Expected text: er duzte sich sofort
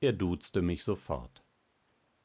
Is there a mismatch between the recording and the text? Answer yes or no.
yes